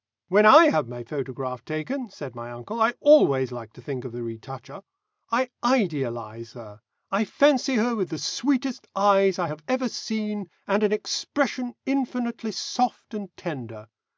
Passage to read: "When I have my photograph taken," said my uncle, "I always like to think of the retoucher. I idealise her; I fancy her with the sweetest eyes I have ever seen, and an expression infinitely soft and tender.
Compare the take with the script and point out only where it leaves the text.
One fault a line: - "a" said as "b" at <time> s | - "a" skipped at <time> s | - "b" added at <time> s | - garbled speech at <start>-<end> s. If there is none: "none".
none